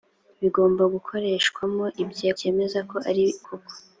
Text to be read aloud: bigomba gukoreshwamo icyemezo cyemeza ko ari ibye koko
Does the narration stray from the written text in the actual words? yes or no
yes